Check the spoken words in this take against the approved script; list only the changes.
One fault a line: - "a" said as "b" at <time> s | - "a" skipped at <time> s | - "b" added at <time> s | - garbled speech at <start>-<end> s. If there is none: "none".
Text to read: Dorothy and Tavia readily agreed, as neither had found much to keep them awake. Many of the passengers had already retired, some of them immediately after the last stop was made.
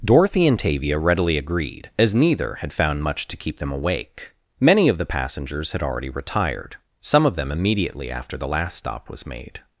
none